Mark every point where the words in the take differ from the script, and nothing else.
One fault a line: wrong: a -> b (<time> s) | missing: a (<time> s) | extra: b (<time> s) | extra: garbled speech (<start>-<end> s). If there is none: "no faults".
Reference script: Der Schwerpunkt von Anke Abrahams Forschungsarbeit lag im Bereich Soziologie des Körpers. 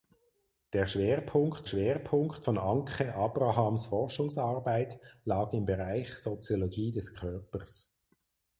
extra: Schwerpunkt (1.6 s)